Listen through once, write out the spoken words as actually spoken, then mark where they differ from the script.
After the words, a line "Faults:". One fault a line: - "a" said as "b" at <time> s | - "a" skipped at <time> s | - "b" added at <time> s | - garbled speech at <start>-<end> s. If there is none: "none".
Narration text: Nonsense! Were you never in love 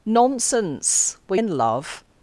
Nonsense! Were in love
Faults:
- "you never" skipped at 1.4 s